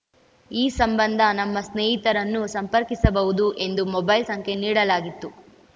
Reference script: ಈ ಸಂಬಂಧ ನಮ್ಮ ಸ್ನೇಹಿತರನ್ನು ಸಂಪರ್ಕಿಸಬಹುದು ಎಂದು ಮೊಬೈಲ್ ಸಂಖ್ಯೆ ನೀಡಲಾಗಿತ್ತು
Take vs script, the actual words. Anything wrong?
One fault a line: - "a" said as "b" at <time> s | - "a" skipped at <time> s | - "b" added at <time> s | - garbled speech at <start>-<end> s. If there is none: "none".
none